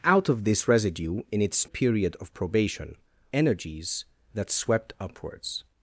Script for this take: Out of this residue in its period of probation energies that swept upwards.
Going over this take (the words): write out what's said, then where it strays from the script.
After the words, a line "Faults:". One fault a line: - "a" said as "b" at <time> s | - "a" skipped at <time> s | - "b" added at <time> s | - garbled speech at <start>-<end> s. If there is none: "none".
Out of this residue in its period of probation energies that swept upwards.
Faults:
none